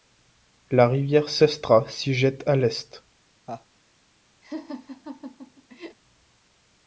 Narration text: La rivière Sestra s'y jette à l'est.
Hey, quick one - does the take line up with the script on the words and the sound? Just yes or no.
no